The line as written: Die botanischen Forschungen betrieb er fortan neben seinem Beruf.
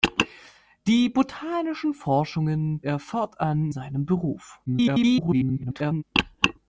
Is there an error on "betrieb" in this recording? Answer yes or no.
yes